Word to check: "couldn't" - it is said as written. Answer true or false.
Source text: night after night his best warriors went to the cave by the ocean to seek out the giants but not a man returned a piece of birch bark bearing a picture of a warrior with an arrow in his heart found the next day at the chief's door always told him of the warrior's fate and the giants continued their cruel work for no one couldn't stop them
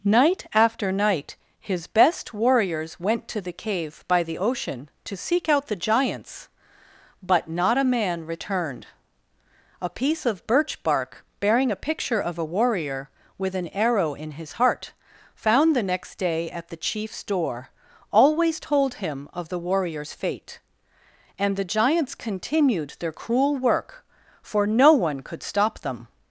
false